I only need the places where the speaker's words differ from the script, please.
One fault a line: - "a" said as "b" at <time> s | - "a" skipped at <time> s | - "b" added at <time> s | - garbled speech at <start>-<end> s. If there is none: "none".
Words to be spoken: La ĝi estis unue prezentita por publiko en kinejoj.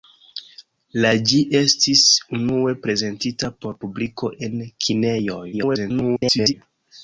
- garbled speech at 5.5-6.5 s